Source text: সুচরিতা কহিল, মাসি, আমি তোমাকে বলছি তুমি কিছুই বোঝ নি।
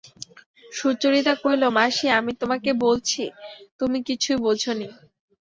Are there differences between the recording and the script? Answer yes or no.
no